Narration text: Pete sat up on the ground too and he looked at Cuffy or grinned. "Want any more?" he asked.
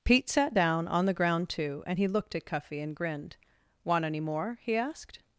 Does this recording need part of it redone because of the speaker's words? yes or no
yes